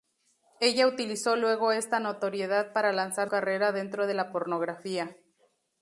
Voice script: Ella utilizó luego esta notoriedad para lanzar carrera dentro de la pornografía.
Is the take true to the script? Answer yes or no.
yes